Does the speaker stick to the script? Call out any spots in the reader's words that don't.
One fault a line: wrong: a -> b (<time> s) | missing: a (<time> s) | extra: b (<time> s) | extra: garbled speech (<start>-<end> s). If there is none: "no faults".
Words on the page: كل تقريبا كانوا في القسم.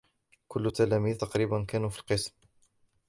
extra: التلاميذ (0.6 s)